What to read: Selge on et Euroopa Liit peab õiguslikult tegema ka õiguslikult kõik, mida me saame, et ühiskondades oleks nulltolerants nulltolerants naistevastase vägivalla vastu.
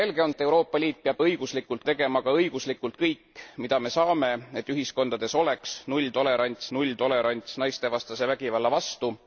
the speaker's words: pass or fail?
pass